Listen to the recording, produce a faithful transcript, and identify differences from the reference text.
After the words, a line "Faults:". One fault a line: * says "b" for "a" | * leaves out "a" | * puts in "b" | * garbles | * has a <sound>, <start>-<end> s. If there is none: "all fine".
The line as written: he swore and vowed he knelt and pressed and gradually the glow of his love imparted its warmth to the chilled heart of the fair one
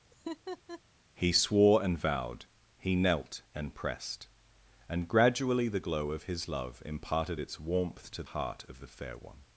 he swore and vowed he knelt and pressed and gradually the glow of his love imparted its warmth to heart of the fair one
Faults:
* has a laugh, 0.1-0.8 s
* leaves out "the chilled"